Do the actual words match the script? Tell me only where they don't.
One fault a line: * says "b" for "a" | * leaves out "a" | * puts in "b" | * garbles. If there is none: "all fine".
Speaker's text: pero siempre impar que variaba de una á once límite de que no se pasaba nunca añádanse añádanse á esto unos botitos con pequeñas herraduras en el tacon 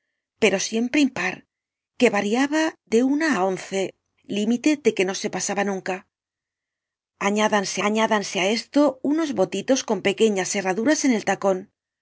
all fine